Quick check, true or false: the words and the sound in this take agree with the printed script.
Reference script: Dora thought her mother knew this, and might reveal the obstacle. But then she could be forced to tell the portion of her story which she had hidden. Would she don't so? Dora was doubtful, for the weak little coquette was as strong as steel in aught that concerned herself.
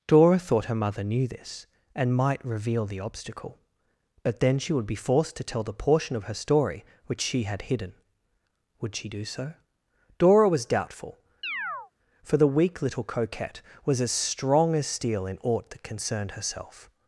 false